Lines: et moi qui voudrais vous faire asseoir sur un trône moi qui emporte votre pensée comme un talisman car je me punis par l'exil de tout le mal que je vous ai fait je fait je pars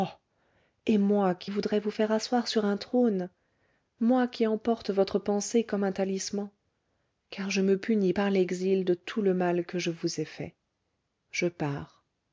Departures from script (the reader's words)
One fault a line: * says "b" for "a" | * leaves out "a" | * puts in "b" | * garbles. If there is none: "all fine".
* leaves out "fait je"